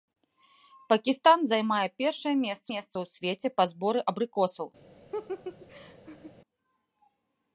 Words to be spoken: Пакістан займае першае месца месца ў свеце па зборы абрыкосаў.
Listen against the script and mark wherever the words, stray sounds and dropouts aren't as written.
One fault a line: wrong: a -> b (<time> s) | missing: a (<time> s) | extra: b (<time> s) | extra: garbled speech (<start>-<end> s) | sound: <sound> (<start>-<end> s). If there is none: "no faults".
sound: laugh (5.1-6.3 s)